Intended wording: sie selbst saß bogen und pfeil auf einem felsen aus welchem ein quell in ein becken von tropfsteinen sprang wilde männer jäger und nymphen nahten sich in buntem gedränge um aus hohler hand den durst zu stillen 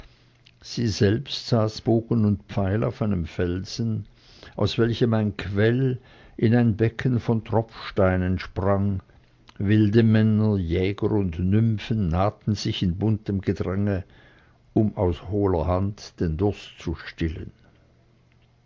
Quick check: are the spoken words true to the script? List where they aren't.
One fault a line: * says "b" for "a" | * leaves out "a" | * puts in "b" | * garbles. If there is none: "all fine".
all fine